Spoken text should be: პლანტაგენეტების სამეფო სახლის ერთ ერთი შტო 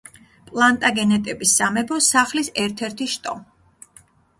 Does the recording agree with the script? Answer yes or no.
yes